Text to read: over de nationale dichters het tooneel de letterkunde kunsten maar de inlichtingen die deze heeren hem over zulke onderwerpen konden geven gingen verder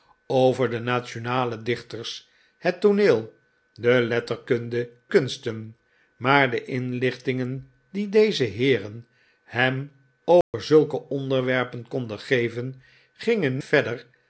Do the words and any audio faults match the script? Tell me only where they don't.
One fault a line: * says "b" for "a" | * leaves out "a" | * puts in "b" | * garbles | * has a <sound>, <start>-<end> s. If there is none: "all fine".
* has a dropout, 10.4-10.5 s